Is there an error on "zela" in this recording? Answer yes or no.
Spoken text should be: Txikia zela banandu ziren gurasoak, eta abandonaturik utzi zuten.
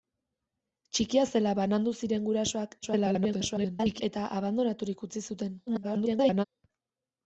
no